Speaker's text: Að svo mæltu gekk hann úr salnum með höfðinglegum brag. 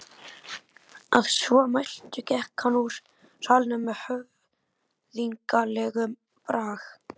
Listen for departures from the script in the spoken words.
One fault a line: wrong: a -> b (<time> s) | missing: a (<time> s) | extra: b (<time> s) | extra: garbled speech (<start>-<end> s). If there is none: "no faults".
no faults